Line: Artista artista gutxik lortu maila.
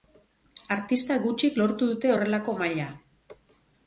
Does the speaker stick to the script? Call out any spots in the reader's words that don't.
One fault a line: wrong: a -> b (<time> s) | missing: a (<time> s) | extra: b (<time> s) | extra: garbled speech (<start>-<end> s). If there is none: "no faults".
missing: artista (1.2 s)
extra: dute horrelako (1.9 s)